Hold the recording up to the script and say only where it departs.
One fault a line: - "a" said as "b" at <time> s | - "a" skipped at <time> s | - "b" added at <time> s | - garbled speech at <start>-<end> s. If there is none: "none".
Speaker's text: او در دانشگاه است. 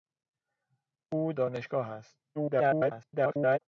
- "در" skipped at 1.3 s
- garbled speech at 2.3-3.6 s